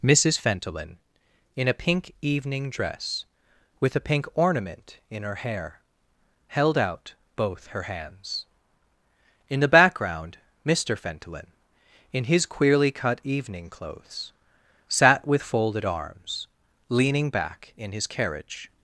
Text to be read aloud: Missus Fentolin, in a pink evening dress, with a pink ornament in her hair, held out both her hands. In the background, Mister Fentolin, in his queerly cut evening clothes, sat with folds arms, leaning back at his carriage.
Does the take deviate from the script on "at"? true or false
true